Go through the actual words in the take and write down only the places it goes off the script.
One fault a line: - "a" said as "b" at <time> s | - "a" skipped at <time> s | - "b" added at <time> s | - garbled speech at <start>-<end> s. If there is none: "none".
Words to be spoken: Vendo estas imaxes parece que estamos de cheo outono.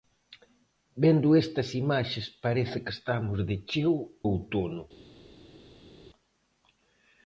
none